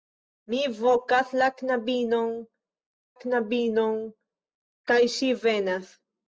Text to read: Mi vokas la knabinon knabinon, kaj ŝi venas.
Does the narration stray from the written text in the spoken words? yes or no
no